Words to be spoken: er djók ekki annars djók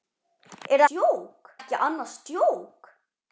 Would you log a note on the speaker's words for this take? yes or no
no